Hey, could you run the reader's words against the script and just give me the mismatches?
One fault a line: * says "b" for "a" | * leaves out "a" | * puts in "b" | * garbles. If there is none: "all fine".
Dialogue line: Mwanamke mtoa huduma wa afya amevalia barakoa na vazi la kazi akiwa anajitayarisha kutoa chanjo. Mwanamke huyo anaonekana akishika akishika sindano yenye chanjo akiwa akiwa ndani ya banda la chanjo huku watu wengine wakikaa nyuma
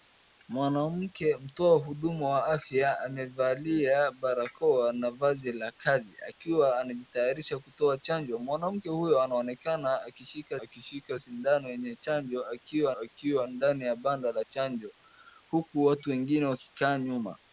all fine